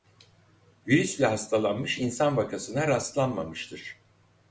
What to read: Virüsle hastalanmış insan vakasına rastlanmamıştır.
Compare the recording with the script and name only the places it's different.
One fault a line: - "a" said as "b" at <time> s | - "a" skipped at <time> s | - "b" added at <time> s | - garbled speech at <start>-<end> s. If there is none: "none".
none